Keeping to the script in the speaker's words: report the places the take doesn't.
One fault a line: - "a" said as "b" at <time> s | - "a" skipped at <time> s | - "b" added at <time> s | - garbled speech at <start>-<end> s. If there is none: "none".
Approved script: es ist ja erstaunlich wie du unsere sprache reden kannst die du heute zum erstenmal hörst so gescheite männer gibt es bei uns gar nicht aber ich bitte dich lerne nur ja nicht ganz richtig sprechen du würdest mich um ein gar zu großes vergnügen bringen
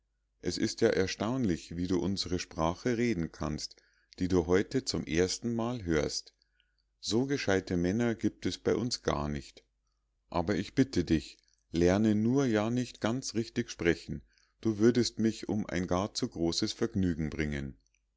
none